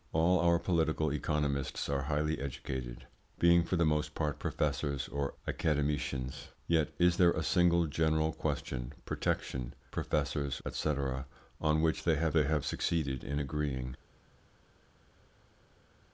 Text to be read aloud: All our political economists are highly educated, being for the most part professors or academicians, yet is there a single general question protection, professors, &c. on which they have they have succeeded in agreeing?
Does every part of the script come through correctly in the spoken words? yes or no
yes